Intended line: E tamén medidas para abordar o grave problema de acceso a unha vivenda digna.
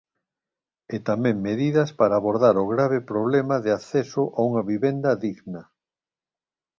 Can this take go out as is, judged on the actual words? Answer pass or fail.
pass